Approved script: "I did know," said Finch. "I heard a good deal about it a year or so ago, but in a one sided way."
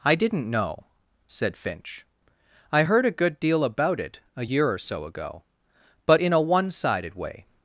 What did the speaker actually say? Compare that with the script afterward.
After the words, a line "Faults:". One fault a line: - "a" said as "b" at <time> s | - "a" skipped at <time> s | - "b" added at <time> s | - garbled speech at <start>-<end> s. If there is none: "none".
"I didn't know," said Finch. "I heard a good deal about it a year or so ago, but in a one sided way."
Faults:
- "did" said as "didn't" at 0.1 s